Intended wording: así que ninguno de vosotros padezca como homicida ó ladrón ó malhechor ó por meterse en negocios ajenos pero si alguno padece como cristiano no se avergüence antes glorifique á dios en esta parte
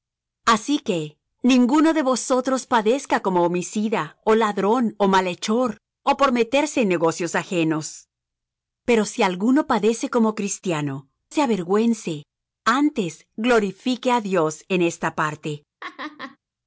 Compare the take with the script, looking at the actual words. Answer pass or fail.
fail